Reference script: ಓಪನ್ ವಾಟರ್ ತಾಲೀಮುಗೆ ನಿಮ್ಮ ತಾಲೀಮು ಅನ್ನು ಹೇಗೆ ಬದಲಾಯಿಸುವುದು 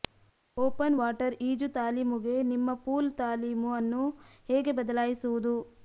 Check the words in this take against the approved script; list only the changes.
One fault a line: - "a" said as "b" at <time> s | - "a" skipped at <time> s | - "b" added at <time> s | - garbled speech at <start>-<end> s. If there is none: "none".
- "ಈಜು" added at 1.4 s
- "ಪೂಲ್" added at 2.9 s